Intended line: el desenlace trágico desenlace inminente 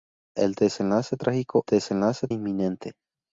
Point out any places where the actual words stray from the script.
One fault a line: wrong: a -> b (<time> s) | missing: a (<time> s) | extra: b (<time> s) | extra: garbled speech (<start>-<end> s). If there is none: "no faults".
no faults